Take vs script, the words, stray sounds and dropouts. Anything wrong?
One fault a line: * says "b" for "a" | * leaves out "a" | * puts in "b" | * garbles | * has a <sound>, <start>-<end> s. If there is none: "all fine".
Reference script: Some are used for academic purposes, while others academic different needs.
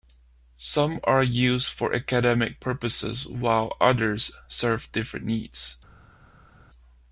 * says "serve" for "academic"